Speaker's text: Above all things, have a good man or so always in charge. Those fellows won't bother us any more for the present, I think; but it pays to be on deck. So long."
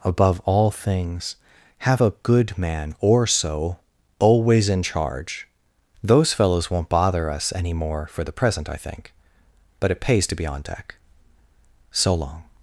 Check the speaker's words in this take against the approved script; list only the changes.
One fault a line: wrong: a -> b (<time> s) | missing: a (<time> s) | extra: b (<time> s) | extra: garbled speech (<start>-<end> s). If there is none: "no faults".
no faults